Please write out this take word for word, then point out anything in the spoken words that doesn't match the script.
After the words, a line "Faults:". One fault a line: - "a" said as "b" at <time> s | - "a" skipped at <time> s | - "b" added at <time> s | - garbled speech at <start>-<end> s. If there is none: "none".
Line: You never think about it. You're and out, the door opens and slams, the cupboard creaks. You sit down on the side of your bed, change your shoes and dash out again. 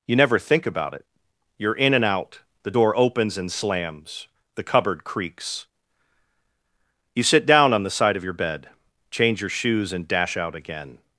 You never think about it. You're in and out, the door opens and slams, the cupboard creaks. You sit down on the side of your bed, change your shoes and dash out again.
Faults:
- "in" added at 1.8 s